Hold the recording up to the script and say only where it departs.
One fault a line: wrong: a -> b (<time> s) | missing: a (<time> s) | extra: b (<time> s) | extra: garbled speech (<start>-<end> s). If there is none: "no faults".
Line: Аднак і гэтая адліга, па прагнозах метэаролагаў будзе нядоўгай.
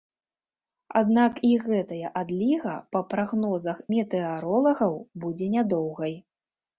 no faults